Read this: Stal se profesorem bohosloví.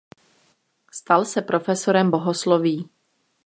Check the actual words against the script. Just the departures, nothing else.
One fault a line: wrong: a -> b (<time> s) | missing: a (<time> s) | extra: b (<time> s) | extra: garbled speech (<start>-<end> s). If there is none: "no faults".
no faults